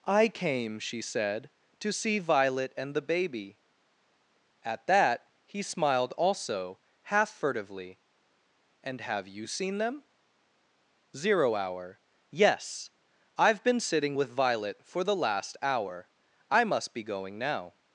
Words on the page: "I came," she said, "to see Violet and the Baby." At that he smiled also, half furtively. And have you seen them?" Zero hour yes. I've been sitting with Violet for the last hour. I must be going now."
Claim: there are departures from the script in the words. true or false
false